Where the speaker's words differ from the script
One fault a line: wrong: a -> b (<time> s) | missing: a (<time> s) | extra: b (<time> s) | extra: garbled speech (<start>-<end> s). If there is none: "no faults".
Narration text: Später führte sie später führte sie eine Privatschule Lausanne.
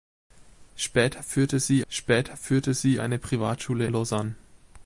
no faults